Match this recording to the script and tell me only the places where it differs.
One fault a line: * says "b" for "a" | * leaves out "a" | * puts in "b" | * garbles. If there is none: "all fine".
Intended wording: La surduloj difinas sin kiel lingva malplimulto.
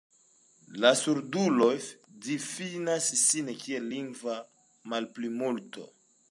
all fine